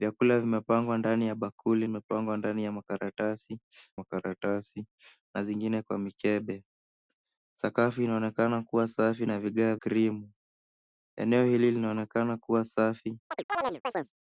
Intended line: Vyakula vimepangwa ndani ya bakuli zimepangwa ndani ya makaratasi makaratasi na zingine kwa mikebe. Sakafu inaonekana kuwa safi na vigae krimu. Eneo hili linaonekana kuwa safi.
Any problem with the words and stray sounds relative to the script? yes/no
yes